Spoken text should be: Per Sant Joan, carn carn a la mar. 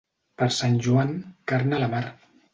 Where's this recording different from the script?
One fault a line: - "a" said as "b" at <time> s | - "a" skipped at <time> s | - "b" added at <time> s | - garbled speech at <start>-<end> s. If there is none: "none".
- "carn" skipped at 1.8 s